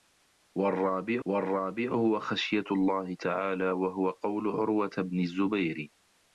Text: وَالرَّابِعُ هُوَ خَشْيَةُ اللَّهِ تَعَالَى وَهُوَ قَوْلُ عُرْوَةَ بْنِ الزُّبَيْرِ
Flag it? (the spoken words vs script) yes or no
yes